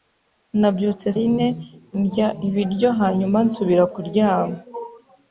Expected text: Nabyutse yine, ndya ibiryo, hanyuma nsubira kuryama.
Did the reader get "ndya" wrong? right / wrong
right